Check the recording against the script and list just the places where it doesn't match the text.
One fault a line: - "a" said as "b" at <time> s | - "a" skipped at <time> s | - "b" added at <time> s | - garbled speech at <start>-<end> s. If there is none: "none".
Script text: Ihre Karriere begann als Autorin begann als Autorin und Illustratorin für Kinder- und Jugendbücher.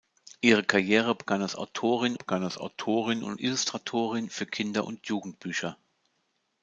none